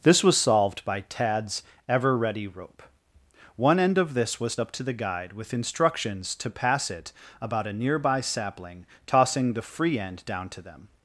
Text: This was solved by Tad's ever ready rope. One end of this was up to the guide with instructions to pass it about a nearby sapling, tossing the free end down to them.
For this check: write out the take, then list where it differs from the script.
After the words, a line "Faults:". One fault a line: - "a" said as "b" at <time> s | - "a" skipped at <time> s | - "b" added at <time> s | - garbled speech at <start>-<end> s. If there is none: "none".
This was solved by Tad's ever ready rope. One end of this was up to the guide with instructions to pass it about a nearby sapling, tossing the free end down to them.
Faults:
none